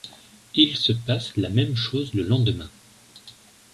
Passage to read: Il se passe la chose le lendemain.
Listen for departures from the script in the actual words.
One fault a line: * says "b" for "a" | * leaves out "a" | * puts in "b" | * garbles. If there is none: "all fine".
* puts in "même"